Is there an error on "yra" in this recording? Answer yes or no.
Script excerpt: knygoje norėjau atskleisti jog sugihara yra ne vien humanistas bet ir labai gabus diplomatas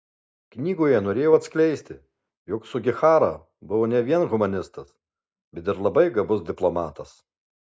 yes